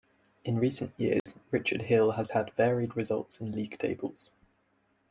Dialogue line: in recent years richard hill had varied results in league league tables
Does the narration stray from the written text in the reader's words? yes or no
yes